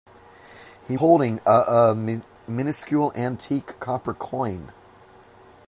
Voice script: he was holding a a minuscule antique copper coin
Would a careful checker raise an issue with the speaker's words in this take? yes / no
yes